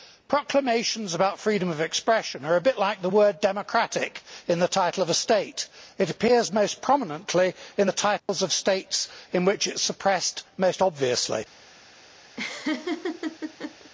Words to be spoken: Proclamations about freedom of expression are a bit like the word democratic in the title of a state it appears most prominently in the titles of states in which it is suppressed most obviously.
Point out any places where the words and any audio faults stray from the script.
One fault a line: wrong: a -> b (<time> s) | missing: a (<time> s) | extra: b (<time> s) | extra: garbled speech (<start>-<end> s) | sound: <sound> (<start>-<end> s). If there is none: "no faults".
sound: dropout (8.2-8.3 s)
sound: laugh (12.4-13.9 s)